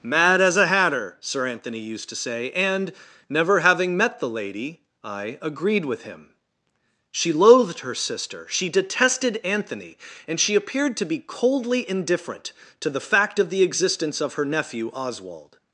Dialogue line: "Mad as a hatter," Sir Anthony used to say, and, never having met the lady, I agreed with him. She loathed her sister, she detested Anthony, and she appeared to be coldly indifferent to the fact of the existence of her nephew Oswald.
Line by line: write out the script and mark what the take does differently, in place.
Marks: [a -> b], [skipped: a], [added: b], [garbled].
"Mad as a hatter," Sir Anthony used to say, and, never having met the lady, I agreed with him. She loathed her sister, she detested Anthony, and she appeared to be coldly indifferent to the fact of the existence of her nephew Oswald.